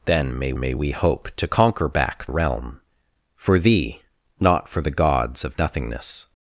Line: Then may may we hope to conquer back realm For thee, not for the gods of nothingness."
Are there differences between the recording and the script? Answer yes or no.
no